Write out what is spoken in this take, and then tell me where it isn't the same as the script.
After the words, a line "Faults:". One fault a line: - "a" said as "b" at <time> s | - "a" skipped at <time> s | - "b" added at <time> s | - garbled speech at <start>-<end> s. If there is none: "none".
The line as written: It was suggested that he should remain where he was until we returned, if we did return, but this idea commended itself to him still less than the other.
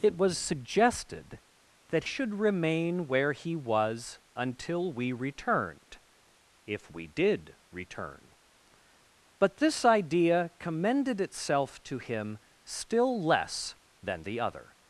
It was suggested that should remain where he was until we returned, if we did return, but this idea commended itself to him still less than the other.
Faults:
- "he" skipped at 2.0 s